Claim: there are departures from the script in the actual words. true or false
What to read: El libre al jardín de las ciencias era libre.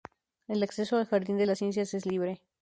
true